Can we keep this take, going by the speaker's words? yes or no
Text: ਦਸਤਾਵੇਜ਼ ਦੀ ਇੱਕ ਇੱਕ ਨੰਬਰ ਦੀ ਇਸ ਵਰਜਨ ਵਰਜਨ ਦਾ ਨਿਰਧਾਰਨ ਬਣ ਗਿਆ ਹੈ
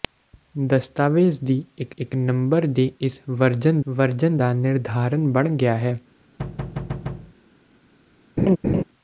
yes